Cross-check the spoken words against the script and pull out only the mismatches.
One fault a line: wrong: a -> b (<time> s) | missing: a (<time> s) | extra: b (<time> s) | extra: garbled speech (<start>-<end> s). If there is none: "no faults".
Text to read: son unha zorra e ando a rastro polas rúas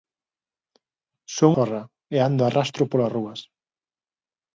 missing: unha (1.5 s)